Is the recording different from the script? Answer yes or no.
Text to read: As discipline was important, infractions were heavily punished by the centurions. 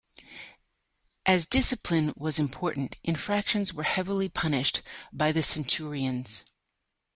no